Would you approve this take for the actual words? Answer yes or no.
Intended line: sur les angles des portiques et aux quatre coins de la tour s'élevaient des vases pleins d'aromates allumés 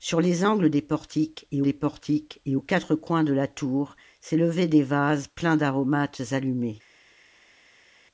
no